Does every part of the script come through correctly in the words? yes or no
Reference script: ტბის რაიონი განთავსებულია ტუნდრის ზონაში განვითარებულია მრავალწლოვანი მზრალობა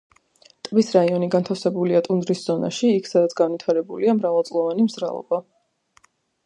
no